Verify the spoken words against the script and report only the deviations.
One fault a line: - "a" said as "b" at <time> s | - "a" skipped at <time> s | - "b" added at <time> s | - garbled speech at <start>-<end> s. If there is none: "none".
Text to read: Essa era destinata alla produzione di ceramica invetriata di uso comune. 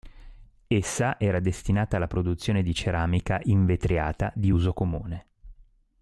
none